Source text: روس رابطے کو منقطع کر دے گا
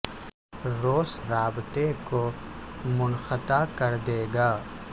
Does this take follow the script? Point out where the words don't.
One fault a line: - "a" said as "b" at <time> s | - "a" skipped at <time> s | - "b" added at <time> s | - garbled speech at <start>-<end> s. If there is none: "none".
none